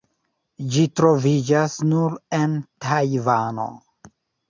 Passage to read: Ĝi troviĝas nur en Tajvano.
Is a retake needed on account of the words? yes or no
no